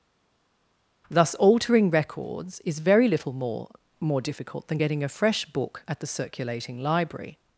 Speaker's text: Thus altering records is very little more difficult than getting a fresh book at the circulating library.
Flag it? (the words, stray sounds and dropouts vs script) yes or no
yes